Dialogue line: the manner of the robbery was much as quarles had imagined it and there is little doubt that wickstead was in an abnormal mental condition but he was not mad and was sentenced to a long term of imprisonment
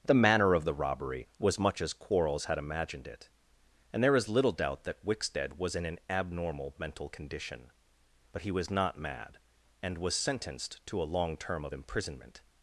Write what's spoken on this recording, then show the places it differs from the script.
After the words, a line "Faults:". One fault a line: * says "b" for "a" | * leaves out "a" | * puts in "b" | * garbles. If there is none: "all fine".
the manner of the robbery was much as quarles had imagined it and there is little doubt that wickstead was in an abnormal mental condition but he was not mad and was sentenced to a long term of imprisonment
Faults:
all fine